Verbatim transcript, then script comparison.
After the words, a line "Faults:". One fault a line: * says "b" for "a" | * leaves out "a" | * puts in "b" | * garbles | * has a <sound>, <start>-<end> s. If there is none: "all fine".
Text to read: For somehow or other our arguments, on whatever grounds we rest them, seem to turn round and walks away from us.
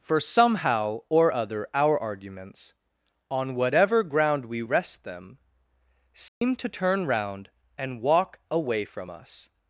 For somehow or other our arguments, on whatever ground we rest them, seem to turn round and walk away from us.
Faults:
* says "ground" for "grounds"
* has a dropout, 6.3-6.4 s
* says "walk" for "walks"